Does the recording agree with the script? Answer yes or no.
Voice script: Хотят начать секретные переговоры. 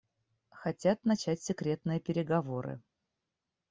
yes